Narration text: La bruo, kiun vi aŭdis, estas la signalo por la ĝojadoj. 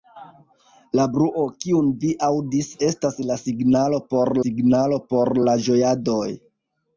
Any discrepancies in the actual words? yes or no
yes